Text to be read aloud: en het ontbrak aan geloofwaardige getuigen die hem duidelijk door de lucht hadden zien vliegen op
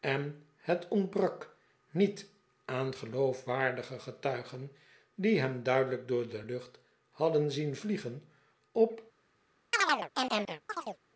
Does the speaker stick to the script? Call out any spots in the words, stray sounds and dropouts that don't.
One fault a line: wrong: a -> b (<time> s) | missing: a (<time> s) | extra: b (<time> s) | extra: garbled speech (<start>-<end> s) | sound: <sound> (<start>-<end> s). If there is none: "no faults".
extra: niet (1.9 s)
sound: chirp (9.7-11.0 s)